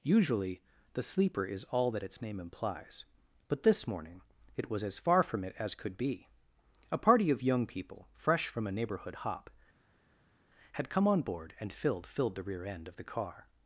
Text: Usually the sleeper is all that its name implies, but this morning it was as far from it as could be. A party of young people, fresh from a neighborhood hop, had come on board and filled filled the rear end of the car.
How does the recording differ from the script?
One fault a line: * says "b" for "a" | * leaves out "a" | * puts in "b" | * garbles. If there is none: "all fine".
all fine